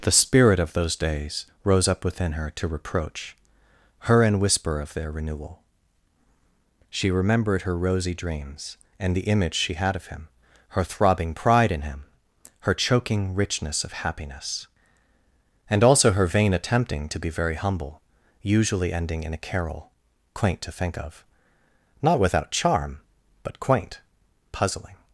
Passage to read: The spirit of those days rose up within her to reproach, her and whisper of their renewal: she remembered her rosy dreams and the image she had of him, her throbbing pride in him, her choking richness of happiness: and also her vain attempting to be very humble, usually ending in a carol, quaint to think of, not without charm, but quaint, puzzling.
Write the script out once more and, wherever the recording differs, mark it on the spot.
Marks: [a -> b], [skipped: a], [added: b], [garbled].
The spirit of those days rose up within her to reproach, her and whisper of their renewal: she remembered her rosy dreams and the image she had of him, her throbbing pride in him, her choking richness of happiness: and also her vain attempting to be very humble, usually ending in a carol, quaint to think of, not without charm, but quaint, puzzling.